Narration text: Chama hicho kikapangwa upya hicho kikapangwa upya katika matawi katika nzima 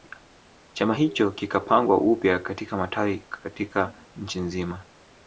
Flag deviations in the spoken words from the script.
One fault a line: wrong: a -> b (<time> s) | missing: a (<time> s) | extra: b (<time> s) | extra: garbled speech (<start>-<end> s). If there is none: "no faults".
missing: hicho kikapangwa upya (2.4 s)
extra: nchi (4.1 s)